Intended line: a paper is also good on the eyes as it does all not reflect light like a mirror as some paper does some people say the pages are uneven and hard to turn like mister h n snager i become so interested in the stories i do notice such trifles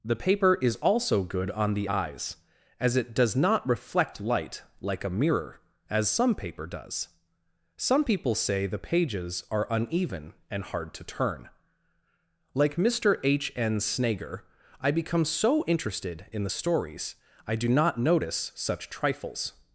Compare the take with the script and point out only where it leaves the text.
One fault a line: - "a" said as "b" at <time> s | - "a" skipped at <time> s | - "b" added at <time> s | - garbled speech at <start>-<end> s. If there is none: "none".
- "a" said as "the" at 0.0 s
- "all" skipped at 3.3 s
- "not" added at 17.7 s